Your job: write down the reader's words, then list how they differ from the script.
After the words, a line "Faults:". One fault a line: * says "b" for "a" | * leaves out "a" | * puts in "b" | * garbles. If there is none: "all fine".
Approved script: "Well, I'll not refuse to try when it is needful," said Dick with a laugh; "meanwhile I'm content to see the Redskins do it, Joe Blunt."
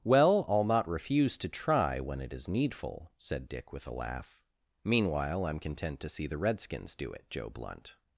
"Well, I'll not refuse to try when it is needful," said Dick with a laugh; "meanwhile I'm content to see the Redskins do it, Joe Blunt."
Faults:
all fine